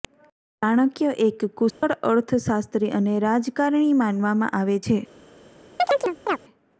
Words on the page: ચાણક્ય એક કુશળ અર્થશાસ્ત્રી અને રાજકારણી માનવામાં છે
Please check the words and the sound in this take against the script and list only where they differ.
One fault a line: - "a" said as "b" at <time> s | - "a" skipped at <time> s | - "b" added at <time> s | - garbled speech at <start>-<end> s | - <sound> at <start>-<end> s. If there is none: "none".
- dropout at 1.7-1.8 s
- "આવે" added at 4.5 s
- chirp at 5.8-6.4 s